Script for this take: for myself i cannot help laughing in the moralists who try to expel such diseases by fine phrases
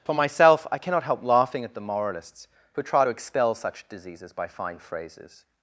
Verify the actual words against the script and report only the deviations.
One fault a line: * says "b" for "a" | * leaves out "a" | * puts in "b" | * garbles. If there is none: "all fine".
* says "at" for "in"